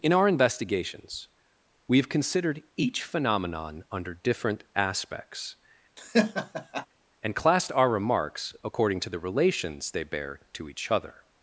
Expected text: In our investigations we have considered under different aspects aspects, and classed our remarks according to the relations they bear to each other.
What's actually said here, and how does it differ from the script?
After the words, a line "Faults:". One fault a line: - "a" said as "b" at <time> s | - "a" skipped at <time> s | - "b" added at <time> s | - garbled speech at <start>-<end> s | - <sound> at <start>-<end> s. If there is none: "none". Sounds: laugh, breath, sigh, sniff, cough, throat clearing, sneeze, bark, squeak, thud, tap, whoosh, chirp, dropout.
In our investigations we have considered each phenomenon under different aspects, and classed our remarks according to the relations they bear to each other.
Faults:
- "each phenomenon" added at 2.8 s
- "aspects" skipped at 5.6 s
- laugh at 6.0-6.9 s